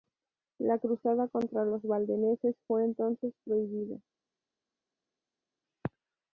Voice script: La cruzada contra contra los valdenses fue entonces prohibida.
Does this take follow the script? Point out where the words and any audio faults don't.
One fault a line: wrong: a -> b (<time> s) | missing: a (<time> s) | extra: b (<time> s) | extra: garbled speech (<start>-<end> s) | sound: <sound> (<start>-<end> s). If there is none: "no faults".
missing: contra (1.6 s)